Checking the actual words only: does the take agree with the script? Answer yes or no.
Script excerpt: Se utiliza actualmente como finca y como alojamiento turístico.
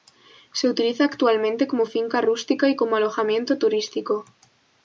no